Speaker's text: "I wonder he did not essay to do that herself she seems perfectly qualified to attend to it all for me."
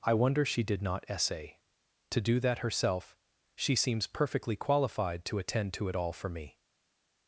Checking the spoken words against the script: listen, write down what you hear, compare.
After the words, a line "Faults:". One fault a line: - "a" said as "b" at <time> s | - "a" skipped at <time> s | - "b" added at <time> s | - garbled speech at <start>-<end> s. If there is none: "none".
"I wonder she did not essay to do that herself she seems perfectly qualified to attend to it all for me."
Faults:
- "he" said as "she" at 0.5 s